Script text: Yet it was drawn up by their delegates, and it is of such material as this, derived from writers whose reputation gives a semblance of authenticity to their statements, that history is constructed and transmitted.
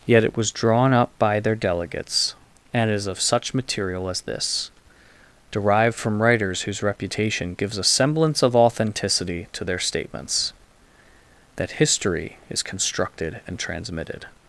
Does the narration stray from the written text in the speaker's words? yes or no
yes